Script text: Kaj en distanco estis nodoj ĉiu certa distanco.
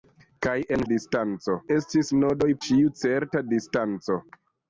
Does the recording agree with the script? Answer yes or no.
yes